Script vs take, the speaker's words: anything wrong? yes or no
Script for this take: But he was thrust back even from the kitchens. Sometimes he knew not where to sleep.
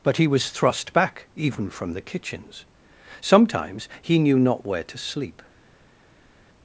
no